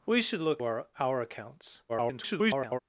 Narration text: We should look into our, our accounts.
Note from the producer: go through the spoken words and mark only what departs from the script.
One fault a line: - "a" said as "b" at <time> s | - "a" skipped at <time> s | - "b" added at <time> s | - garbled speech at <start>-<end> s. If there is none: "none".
- "into" skipped at 0.6 s
- garbled speech at 1.9-2.8 s